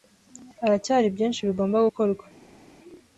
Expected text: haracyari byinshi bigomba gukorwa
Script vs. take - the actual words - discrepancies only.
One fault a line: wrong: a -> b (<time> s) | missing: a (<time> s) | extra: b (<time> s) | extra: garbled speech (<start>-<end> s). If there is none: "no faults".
no faults